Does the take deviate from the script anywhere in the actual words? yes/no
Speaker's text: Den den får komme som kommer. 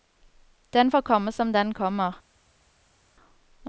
yes